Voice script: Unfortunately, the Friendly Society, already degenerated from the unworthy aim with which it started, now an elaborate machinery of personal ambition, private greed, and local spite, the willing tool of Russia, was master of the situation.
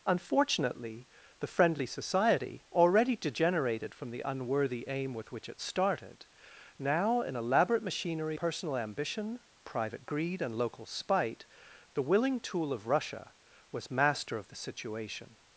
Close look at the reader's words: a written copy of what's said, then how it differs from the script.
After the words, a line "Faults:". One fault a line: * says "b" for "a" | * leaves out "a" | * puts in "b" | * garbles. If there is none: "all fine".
Unfortunately, the Friendly Society, already degenerated from the unworthy aim with which it started, now an elaborate machinery personal ambition, private greed, and local spite, the willing tool of Russia, was master of the situation.
Faults:
* leaves out "of"